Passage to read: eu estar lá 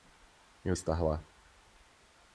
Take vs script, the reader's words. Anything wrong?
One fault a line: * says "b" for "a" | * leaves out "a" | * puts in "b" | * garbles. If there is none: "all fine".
all fine